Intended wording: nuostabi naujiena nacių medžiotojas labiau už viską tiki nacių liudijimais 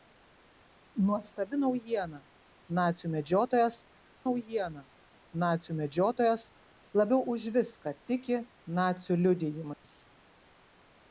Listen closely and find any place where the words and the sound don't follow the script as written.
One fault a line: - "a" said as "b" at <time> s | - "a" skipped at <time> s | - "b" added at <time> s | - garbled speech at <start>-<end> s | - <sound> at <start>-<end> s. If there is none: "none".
- "naujiena nacių medžiotojas" added at 4.2 s
- dropout at 9.7-9.8 s